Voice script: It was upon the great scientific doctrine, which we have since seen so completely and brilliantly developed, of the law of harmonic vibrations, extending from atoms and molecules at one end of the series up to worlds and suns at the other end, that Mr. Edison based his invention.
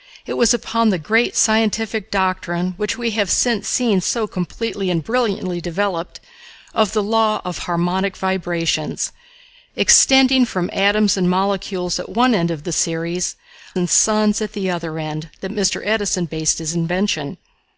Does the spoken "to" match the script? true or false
false